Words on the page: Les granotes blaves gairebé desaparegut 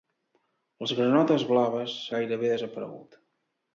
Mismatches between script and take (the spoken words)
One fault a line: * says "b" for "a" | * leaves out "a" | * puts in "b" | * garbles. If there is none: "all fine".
all fine